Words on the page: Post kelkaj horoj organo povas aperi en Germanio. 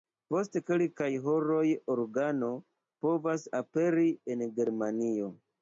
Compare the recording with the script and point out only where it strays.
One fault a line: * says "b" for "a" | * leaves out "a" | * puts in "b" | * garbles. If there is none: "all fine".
all fine